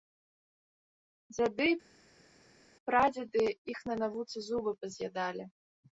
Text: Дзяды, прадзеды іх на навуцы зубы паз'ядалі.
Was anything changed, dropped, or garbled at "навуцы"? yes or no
no